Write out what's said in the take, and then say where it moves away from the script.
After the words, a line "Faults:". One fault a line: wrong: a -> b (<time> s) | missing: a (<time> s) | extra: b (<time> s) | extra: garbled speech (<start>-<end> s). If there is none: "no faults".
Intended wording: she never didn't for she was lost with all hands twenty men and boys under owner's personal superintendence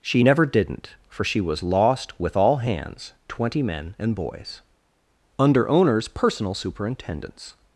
she never didn't for she was lost with all hands twenty men and boys under owner's personal superintendence
Faults:
no faults